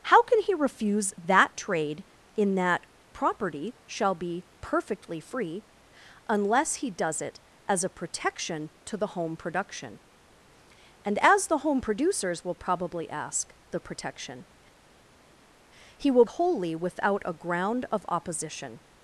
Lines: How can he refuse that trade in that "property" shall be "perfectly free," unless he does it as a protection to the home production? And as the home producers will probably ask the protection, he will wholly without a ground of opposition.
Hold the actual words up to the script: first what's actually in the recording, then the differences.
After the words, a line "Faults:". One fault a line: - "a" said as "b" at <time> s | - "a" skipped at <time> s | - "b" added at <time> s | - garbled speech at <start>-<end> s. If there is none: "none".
How can he refuse that trade in that "property" shall be "perfectly free," unless he does it as a protection to the home production? And as the home producers will probably ask the protection, he will wholly without a ground of opposition.
Faults:
none